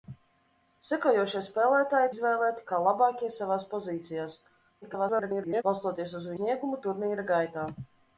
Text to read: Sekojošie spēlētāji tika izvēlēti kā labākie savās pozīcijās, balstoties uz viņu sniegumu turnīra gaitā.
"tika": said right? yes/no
no